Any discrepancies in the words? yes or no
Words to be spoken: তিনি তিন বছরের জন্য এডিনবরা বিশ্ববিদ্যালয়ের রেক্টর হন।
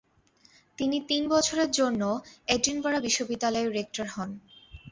no